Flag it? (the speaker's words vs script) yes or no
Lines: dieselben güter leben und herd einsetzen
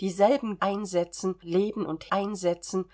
yes